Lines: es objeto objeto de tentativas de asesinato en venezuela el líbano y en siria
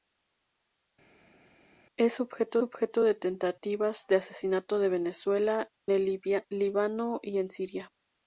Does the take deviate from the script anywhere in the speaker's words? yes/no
no